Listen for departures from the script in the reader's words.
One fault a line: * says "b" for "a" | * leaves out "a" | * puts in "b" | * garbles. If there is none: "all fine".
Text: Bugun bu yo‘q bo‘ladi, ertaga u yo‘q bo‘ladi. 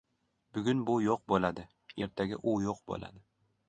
all fine